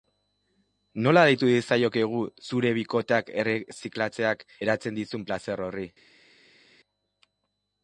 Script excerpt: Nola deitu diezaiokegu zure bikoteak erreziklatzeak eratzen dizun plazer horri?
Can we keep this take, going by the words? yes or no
yes